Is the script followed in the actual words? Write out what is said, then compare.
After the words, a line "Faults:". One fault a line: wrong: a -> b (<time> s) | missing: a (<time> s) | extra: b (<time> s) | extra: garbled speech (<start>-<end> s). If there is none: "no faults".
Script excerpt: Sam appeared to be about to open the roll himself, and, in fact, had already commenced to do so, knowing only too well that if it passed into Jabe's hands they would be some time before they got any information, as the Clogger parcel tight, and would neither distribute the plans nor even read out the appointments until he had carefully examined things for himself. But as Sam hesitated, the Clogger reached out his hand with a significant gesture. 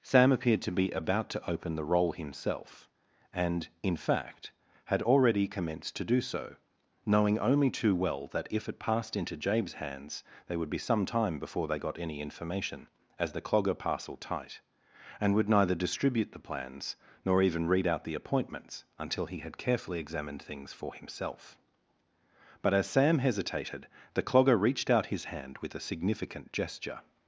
Sam appeared to be about to open the roll himself, and, in fact, had already commenced to do so, knowing only too well that if it passed into Jabe's hands they would be some time before they got any information, as the Clogger parcel tight, and would neither distribute the plans nor even read out the appointments until he had carefully examined things for himself. But as Sam hesitated, the Clogger reached out his hand with a significant gesture.
Faults:
no faults